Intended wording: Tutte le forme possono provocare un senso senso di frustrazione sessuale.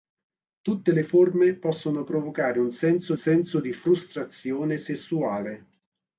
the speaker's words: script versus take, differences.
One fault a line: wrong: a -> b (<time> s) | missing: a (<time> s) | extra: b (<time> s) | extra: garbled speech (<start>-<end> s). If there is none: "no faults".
no faults